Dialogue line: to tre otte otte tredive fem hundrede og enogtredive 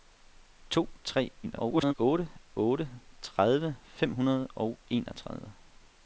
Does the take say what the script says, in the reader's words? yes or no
no